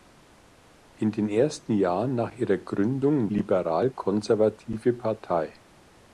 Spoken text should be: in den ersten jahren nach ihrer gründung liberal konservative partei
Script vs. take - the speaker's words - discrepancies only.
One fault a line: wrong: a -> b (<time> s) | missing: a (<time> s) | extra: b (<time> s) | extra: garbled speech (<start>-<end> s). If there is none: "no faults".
no faults